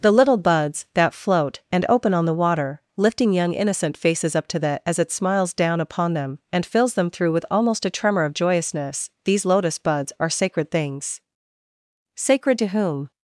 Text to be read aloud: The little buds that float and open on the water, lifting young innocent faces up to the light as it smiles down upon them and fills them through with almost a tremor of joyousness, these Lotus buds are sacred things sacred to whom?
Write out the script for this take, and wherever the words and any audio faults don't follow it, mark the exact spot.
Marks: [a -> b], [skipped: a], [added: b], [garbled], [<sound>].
The little buds that float and open on the water, lifting young innocent faces up to the [skipped: light] as it smiles down upon them and fills them through with almost a tremor of joyousness, these Lotus buds are sacred things sacred to whom?